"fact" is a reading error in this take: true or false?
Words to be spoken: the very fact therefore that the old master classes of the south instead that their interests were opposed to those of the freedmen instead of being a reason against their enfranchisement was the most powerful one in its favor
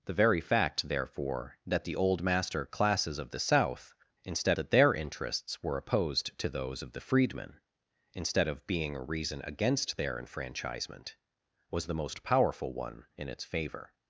false